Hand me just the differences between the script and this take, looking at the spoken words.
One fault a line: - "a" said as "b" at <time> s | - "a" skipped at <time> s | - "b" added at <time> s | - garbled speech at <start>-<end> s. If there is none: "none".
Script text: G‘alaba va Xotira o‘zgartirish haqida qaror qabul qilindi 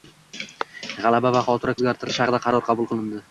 none